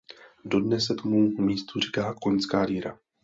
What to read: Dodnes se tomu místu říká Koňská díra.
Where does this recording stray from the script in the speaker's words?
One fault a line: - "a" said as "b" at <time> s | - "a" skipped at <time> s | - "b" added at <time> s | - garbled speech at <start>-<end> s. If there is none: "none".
none